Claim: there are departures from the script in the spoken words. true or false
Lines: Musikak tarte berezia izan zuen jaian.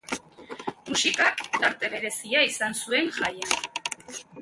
false